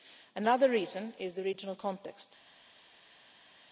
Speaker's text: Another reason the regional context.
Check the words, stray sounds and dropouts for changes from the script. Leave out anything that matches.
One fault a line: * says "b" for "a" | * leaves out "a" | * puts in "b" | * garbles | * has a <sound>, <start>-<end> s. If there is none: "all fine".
* puts in "is"